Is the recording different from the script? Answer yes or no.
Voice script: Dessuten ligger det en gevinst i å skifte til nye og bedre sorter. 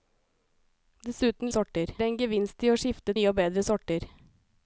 yes